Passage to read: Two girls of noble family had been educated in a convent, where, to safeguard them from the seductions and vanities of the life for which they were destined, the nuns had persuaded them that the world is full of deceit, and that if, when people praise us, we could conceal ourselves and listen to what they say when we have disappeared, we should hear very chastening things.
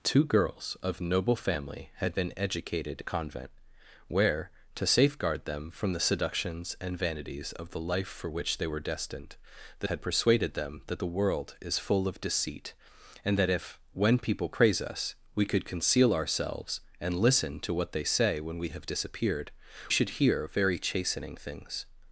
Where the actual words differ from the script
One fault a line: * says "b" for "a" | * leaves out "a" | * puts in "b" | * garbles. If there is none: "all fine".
* leaves out "in"
* leaves out "nuns"
* leaves out "we"